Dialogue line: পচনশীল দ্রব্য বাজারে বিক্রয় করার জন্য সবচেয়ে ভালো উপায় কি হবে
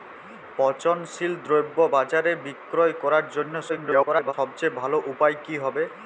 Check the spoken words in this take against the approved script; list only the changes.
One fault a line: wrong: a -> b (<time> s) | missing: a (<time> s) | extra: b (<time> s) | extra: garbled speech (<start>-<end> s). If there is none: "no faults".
extra: garbled speech (3.7-4.3 s)